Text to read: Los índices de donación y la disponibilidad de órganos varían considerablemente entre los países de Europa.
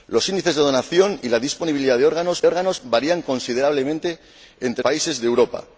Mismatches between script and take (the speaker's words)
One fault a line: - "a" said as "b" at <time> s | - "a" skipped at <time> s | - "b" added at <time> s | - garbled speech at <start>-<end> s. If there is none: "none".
- "órganos" added at 2.5 s
- "los" skipped at 4.8 s